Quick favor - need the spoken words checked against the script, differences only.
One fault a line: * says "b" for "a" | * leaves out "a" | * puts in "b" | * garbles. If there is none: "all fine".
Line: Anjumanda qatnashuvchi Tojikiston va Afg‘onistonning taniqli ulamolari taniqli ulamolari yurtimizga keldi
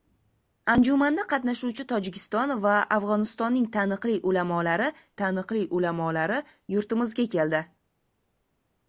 all fine